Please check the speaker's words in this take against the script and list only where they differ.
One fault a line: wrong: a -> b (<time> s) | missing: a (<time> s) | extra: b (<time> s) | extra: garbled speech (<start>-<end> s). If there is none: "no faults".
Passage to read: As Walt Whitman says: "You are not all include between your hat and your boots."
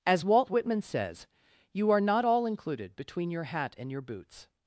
wrong: include -> included (2.5 s)